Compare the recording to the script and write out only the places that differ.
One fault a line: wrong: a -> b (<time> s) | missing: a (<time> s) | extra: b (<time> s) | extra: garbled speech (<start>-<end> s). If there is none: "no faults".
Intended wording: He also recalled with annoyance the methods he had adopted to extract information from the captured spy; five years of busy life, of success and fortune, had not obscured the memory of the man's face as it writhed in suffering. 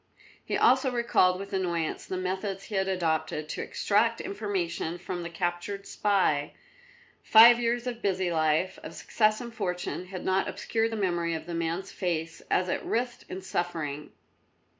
no faults